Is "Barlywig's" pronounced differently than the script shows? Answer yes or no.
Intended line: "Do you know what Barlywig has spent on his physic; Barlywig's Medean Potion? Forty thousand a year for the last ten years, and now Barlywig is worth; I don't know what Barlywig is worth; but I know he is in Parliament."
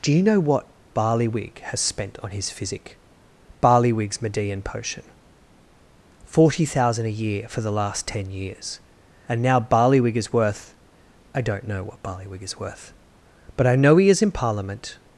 no